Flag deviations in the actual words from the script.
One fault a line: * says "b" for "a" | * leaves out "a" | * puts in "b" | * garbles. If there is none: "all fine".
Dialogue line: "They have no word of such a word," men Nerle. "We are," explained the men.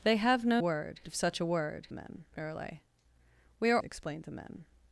all fine